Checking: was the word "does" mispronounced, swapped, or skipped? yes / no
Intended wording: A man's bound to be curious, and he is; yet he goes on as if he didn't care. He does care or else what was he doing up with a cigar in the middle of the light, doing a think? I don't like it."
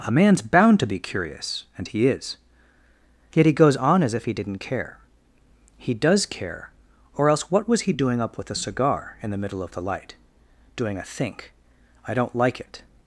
no